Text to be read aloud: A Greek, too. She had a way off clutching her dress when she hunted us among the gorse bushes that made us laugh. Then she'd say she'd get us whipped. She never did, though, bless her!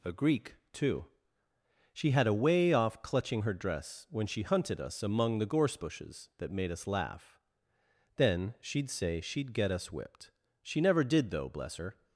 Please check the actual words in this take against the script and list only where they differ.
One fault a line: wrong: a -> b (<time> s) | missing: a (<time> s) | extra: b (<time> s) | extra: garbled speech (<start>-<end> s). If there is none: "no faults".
no faults